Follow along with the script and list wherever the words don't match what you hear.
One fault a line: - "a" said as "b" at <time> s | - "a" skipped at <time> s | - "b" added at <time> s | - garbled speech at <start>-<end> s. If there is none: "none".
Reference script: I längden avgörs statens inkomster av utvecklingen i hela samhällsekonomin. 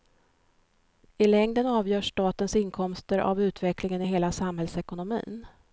none